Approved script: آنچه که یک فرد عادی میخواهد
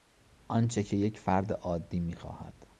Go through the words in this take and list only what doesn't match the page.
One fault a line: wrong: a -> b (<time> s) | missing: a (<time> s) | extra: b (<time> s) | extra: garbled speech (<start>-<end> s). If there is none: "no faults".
no faults